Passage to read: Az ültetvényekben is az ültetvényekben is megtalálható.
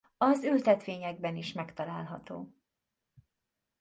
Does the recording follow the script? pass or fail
fail